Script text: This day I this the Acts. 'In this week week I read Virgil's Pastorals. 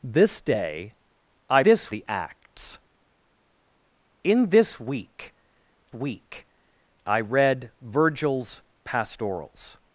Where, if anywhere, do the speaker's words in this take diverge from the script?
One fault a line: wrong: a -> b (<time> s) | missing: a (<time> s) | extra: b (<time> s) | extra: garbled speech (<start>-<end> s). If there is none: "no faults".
no faults